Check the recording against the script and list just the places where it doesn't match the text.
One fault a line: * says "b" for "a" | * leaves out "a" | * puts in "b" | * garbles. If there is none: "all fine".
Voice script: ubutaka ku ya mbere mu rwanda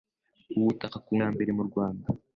all fine